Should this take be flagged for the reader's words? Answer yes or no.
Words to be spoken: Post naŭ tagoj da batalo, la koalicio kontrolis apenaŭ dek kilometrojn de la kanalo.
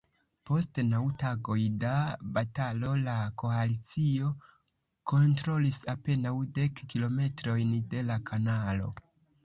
no